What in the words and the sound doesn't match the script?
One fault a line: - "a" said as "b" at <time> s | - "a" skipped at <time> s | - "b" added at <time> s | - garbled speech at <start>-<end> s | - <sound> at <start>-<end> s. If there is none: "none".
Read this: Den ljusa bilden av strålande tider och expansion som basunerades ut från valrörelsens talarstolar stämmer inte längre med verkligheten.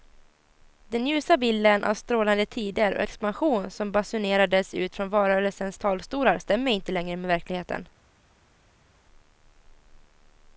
none